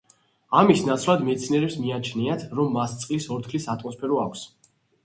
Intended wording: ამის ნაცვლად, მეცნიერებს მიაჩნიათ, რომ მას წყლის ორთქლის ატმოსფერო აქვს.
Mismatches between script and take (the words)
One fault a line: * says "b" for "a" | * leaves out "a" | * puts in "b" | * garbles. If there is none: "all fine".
all fine